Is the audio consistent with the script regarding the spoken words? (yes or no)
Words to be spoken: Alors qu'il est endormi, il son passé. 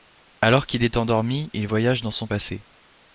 no